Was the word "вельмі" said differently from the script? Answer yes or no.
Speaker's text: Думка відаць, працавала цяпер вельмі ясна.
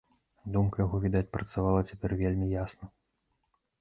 no